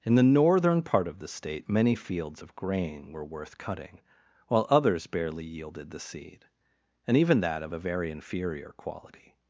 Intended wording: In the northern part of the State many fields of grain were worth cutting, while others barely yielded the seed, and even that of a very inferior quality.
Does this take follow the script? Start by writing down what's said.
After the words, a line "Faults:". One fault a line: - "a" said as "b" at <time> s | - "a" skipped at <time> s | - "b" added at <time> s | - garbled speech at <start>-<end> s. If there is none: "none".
In the northern part of the State many fields of grain were worth cutting, while others barely yielded the seed, and even that of a very inferior quality.
Faults:
none